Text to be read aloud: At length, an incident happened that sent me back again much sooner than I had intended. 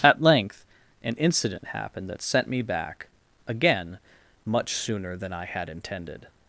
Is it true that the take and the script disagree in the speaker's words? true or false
false